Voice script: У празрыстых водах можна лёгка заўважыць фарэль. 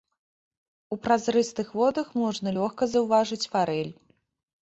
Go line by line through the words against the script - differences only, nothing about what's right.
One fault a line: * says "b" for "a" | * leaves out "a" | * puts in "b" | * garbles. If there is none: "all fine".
all fine